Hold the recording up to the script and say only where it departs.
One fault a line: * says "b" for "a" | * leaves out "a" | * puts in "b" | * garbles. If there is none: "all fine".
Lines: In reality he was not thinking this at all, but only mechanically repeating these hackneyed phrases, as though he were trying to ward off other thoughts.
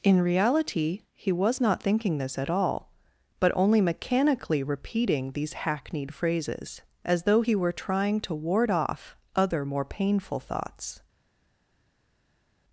* puts in "more painful"